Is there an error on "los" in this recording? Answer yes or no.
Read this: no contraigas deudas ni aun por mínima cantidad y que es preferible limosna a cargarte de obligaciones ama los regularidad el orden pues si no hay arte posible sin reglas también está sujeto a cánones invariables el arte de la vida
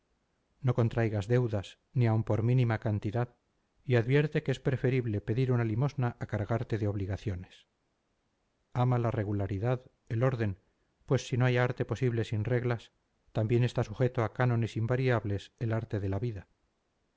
yes